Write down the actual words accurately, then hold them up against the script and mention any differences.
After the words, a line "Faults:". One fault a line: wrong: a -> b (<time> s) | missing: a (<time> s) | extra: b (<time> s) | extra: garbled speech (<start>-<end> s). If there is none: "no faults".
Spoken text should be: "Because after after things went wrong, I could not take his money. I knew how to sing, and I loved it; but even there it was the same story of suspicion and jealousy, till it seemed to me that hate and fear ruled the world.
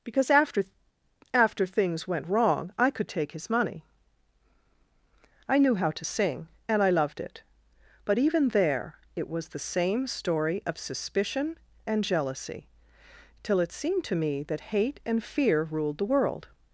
"Because after after things went wrong, I could take his money. I knew how to sing, and I loved it; but even there it was the same story of suspicion and jealousy, till it seemed to me that hate and fear ruled the world.
Faults:
missing: not (3.1 s)